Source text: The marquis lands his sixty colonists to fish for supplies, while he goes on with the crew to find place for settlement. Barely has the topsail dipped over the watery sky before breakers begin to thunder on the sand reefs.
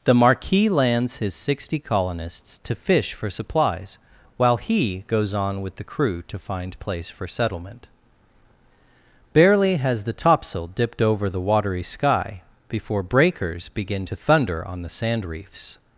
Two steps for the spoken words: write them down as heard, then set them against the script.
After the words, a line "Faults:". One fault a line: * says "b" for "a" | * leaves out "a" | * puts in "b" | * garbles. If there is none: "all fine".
The marquis lands his sixty colonists to fish for supplies, while he goes on with the crew to find place for settlement. Barely has the topsail dipped over the watery sky before breakers begin to thunder on the sand reefs.
Faults:
all fine